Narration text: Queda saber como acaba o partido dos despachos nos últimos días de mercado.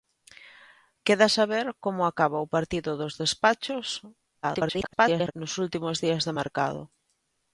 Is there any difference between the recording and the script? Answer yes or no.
yes